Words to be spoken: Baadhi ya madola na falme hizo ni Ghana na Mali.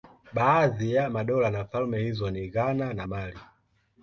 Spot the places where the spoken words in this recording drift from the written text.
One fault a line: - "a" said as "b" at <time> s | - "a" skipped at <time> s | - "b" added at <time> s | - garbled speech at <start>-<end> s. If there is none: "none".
none